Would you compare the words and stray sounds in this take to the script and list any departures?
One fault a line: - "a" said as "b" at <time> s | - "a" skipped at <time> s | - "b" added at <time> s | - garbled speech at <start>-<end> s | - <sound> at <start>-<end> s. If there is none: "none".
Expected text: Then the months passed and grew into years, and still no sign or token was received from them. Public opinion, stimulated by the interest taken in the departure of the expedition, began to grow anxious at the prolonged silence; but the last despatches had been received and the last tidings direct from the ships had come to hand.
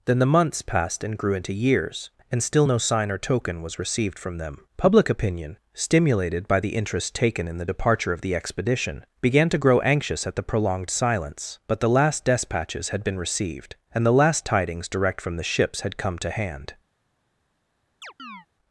- chirp at 18.0-18.5 s